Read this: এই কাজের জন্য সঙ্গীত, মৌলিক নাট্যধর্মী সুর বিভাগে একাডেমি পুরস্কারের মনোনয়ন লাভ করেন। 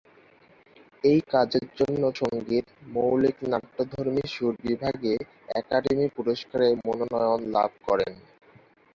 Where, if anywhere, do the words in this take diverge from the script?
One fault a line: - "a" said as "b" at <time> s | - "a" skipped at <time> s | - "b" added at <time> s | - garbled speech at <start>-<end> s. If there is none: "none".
none